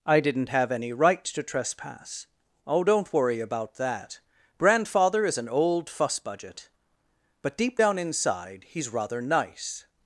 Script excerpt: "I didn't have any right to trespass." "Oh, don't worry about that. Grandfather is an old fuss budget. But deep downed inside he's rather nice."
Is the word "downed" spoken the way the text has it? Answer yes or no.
no